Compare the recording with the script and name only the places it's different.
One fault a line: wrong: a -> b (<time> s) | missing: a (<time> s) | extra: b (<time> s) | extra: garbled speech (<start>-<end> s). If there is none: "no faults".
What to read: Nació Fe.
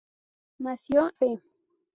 no faults